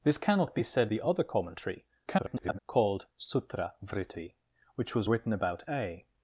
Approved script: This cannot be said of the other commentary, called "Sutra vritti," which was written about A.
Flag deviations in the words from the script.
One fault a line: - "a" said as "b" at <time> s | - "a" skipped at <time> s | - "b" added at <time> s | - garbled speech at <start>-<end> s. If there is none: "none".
- "of" skipped at 0.9 s
- garbled speech at 2.1-2.6 s